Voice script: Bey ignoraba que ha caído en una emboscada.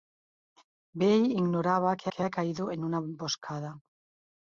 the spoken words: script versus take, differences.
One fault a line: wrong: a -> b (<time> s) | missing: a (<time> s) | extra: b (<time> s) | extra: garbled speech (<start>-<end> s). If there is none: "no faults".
extra: que (2.1 s)